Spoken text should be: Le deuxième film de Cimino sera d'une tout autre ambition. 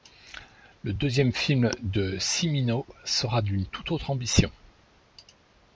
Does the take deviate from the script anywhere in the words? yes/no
no